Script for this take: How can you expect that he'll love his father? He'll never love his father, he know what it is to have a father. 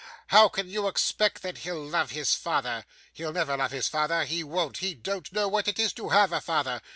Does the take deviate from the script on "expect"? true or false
false